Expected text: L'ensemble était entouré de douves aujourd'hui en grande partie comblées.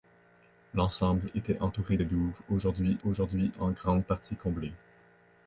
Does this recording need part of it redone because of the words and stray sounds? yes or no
yes